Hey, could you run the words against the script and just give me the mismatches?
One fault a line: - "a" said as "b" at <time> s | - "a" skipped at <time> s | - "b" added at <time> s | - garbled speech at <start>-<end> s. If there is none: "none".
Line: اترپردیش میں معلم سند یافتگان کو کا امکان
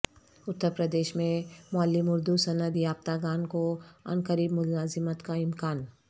- "اردو" added at 2.1 s
- "عنقریب ملازمت" added at 4.0 s